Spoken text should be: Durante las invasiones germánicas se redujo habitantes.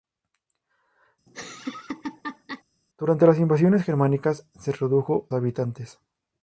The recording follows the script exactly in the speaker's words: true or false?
true